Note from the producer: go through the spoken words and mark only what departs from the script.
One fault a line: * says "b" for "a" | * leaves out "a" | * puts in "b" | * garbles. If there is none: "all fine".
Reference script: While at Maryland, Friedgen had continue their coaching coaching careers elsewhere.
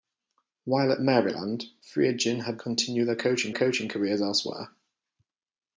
all fine